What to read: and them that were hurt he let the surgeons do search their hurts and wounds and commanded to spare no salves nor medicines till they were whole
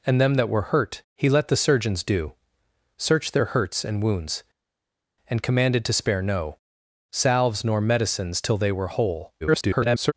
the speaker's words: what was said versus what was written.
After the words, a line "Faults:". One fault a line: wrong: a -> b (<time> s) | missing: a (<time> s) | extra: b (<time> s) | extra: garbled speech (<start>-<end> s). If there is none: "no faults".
and them that were hurt he let the surgeons do search their hurts and wounds and commanded to spare no salves nor medicines till they were whole [garbled]
Faults:
extra: garbled speech (9.4-10.1 s)